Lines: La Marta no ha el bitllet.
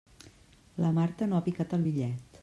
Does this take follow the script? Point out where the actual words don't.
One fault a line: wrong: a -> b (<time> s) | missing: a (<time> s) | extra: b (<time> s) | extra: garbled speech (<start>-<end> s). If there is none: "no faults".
extra: picat (1.5 s)